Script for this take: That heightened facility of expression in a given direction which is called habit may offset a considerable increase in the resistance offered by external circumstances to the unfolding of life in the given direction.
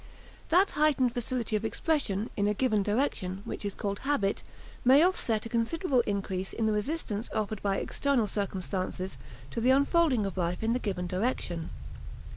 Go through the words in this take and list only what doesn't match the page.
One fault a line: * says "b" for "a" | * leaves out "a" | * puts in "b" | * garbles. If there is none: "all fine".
all fine